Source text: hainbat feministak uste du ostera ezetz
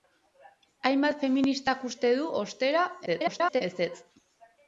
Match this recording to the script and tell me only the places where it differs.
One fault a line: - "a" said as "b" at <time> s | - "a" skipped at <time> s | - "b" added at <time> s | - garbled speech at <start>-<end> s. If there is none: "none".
- garbled speech at 3.1-3.6 s